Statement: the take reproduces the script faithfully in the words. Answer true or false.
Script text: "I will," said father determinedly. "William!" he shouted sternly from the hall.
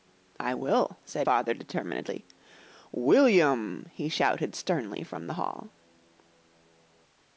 true